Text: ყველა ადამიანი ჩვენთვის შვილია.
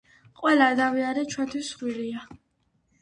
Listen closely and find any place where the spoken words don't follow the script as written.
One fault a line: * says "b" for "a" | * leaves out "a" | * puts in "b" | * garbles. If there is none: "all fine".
all fine